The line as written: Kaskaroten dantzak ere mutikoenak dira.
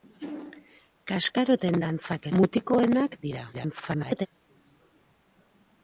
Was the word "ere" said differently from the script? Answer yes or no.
yes